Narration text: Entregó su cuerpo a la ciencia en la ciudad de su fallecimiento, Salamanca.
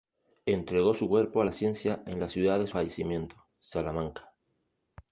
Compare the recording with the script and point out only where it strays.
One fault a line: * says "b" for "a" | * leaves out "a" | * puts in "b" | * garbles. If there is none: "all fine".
* leaves out "su"